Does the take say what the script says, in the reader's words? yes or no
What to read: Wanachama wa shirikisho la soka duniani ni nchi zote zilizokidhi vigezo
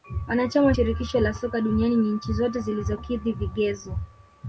yes